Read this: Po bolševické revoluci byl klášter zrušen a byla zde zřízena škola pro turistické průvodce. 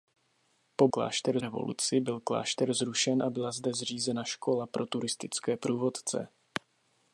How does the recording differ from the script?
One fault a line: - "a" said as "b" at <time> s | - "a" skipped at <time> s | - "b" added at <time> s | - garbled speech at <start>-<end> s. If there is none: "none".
- "bolševické" said as "klášter" at 0.9 s